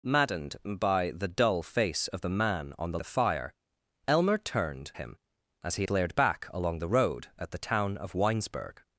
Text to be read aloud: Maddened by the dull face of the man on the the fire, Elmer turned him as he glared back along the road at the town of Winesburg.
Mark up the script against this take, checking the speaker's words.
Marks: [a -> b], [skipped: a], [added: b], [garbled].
Maddened by the dull face of the man on the the fire, Elmer turned him as he glared back along the road at the town of Winesburg.